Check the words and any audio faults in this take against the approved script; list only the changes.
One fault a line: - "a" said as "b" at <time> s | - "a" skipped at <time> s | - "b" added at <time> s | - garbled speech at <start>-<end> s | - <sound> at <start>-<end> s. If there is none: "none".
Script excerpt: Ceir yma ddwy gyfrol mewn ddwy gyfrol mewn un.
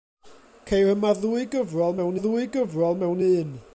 none